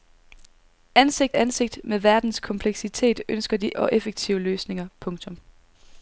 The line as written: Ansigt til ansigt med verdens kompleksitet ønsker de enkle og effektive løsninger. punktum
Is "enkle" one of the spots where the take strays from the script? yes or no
yes